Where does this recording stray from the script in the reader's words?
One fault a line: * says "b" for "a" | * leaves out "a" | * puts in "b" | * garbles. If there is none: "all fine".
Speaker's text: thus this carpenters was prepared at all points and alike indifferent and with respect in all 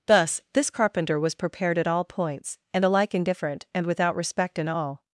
* says "carpenter" for "carpenters"
* says "without" for "with"